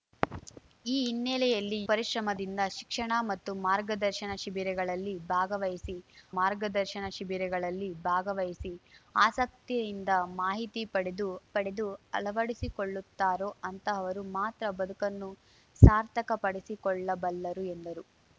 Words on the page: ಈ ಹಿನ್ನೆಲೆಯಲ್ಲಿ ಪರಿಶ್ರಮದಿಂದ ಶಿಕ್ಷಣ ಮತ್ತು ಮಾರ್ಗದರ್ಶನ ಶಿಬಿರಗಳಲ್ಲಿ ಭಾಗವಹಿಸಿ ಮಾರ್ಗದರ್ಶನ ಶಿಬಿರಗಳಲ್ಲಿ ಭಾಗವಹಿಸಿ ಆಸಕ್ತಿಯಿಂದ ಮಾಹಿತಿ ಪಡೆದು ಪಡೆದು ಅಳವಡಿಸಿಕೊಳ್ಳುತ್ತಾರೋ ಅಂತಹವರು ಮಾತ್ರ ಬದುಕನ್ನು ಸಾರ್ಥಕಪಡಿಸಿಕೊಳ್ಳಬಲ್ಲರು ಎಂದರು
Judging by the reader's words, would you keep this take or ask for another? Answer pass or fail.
pass